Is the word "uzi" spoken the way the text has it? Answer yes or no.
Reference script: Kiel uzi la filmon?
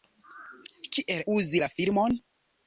yes